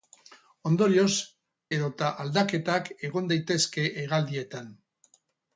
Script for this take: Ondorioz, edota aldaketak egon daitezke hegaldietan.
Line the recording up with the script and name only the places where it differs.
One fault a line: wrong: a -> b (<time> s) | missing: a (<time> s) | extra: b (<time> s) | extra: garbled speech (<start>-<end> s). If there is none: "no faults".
no faults